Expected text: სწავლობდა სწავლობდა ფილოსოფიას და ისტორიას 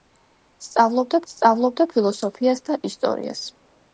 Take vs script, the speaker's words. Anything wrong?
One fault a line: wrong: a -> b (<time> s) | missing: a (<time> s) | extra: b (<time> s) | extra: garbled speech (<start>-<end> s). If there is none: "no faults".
no faults